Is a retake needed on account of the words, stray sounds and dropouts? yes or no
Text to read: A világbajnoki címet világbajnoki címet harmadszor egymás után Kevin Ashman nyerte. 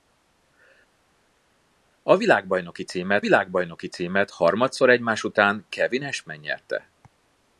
no